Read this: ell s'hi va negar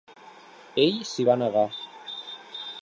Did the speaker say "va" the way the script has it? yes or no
yes